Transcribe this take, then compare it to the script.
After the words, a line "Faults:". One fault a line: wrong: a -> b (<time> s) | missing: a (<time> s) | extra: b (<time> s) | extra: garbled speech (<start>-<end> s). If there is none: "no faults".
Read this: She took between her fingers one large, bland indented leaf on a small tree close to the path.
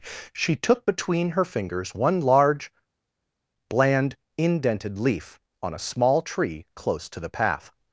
She took between her fingers one large, bland indented leaf on a small tree close to the path.
Faults:
no faults